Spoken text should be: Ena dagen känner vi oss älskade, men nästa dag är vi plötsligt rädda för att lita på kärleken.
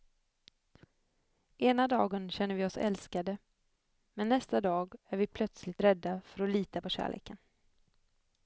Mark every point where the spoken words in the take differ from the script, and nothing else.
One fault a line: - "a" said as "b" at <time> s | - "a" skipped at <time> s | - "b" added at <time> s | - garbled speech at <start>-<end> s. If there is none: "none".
none